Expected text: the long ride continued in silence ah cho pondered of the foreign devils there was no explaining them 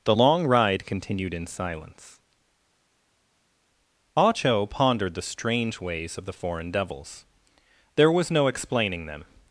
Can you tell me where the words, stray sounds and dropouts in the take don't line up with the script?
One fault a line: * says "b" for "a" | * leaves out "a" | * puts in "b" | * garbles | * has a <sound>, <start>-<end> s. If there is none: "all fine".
* puts in "the strange ways"